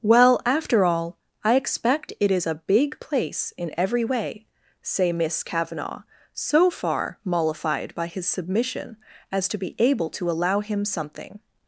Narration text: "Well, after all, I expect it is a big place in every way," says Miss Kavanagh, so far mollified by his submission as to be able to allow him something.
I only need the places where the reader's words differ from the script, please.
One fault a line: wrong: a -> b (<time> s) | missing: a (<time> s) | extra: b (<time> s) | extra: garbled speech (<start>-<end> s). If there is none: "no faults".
wrong: says -> say (4.8 s)